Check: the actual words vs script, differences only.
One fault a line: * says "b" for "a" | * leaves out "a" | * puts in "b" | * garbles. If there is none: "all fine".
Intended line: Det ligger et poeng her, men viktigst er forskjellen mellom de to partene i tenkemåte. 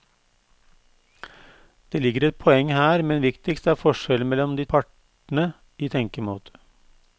* leaves out "to"